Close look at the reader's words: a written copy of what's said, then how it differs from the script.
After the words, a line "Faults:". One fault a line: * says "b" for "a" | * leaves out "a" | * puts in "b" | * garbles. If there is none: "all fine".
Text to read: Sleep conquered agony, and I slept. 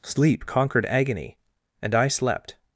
Sleep conquered agony, and I slept.
Faults:
all fine